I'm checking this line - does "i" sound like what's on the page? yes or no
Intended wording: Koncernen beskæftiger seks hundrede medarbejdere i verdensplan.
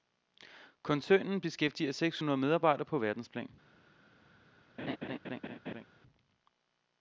no